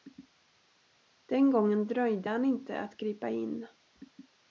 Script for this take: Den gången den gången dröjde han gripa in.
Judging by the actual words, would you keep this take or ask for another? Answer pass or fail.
fail